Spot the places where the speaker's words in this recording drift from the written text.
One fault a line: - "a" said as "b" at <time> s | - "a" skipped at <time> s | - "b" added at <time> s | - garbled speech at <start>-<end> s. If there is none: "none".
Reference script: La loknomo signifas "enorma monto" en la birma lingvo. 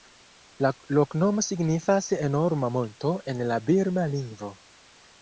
none